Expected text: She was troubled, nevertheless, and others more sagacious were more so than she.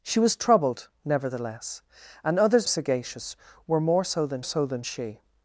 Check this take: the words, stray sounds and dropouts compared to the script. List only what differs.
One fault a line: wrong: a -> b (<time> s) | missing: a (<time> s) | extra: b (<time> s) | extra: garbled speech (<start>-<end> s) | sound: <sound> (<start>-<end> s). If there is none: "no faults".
missing: more (2.7 s)
extra: so than (4.4 s)